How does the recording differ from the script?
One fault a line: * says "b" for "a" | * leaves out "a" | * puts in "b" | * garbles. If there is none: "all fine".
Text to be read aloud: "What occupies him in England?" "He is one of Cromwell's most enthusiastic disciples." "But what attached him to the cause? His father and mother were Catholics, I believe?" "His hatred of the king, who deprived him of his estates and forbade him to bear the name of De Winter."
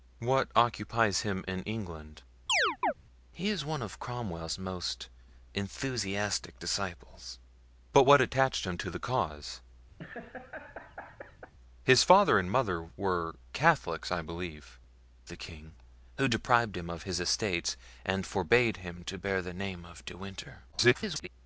* leaves out "His hatred of"
* garbles